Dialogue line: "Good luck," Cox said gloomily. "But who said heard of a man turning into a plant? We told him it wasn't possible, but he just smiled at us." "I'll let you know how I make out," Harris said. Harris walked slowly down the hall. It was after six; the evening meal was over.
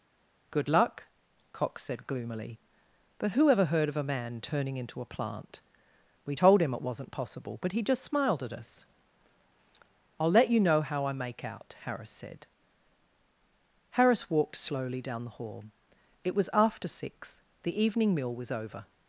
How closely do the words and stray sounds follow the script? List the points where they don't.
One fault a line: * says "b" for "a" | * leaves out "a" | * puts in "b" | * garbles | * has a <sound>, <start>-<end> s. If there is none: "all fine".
* says "ever" for "said"